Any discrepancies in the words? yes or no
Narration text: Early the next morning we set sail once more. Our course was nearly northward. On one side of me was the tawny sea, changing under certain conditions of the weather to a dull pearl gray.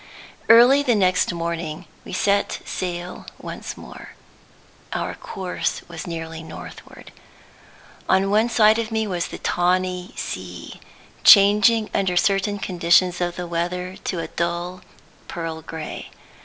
no